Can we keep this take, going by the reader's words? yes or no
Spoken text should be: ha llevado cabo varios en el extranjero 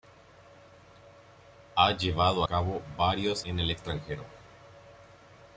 yes